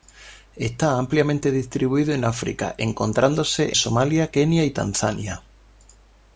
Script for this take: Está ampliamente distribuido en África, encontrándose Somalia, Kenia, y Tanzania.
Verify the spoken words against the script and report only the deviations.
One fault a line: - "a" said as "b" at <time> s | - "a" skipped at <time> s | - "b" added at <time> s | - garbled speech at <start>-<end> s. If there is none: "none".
none